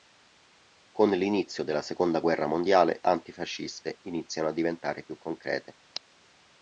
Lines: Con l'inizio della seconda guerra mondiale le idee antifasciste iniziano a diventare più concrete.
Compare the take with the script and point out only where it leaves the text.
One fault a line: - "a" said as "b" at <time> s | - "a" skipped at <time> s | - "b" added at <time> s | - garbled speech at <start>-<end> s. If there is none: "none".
- "le idee" skipped at 3.0 s